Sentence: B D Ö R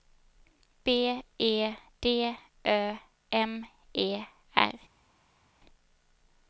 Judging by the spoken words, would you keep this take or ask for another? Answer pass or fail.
fail